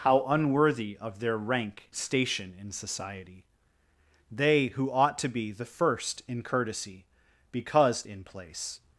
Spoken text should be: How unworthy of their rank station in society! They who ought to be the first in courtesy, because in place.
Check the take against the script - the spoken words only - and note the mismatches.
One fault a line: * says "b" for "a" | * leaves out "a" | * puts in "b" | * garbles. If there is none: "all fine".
all fine